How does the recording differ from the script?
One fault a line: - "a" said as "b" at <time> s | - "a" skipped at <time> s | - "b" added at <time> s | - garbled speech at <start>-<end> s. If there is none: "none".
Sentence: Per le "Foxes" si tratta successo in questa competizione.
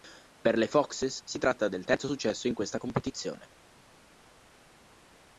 - "del terzo" added at 1.7 s